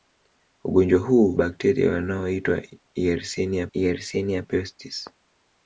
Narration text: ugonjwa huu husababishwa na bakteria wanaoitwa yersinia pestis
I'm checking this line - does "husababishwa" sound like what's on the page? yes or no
no